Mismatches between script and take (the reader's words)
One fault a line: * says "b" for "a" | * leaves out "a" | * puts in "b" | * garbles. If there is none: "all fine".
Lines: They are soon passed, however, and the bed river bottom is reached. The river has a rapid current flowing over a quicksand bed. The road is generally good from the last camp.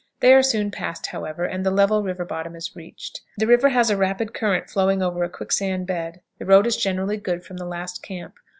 * says "level" for "bed"